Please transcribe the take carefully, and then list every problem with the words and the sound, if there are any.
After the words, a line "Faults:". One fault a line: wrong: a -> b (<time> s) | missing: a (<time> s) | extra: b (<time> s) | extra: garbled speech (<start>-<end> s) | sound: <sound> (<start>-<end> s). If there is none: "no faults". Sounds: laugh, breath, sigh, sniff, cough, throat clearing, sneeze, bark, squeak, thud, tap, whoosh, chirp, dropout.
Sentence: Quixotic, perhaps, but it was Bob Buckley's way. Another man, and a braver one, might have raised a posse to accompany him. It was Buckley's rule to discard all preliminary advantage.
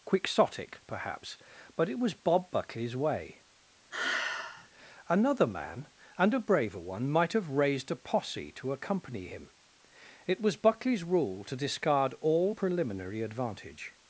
Quixotic, perhaps, but it was Bob Buckley's way. Another man, and a braver one, might have raised a posse to accompany him. It was Buckley's rule to discard all preliminary advantage.
Faults:
sound: sigh (3.9-4.7 s)